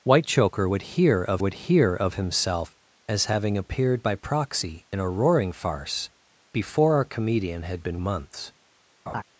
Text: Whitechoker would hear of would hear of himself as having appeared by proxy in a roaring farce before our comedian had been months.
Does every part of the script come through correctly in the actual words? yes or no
yes